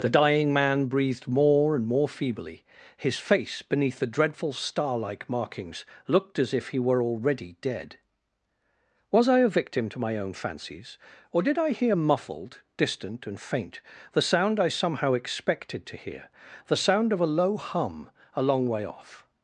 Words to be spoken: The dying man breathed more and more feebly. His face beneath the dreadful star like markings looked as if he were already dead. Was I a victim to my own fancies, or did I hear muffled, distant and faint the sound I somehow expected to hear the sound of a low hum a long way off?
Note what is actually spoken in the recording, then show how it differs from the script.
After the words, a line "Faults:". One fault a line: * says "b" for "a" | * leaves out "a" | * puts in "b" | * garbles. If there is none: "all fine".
The dying man breathed more and more feebly. His face beneath the dreadful star like markings looked as if he were already dead. Was I a victim to my own fancies, or did I hear muffled, distant and faint the sound I somehow expected to hear the sound of a low hum a long way off?
Faults:
all fine